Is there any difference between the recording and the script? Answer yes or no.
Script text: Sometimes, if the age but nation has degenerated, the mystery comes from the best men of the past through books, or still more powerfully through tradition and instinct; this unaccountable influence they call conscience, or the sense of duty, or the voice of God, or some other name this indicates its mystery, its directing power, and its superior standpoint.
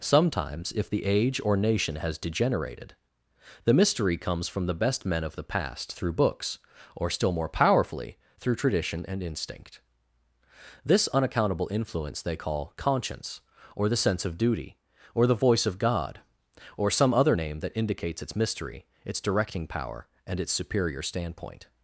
yes